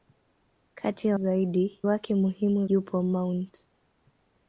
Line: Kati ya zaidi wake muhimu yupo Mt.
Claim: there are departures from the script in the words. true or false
false